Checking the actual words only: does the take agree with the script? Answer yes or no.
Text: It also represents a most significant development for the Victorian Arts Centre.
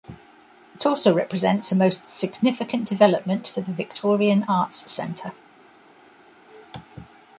yes